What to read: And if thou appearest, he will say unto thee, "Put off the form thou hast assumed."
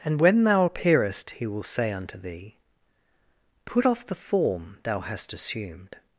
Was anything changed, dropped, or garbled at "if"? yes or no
yes